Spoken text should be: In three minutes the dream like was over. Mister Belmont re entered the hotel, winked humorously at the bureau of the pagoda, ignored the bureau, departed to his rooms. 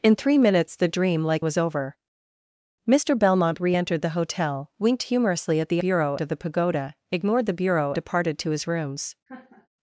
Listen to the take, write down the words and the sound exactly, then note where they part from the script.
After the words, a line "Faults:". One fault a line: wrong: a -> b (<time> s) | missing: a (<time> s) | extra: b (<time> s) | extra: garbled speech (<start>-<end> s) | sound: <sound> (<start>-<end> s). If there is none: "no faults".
In three minutes the dream like was over. Mister Belmont re entered the hotel, winked humorously at the bureau of the pagoda, ignored the bureau, departed to his rooms.
Faults:
sound: laugh (9.3-9.7 s)